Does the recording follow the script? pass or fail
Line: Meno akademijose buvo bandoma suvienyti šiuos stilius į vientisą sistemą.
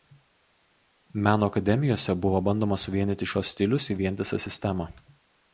pass